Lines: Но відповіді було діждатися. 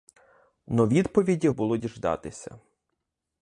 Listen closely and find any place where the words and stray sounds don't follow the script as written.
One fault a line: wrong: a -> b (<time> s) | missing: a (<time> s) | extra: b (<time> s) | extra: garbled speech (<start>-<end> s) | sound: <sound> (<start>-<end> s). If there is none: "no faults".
no faults